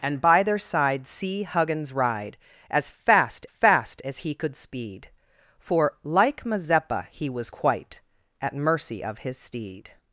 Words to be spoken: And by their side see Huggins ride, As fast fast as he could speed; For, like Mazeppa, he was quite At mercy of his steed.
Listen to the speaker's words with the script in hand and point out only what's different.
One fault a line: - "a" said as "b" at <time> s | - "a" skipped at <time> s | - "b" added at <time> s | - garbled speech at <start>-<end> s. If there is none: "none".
none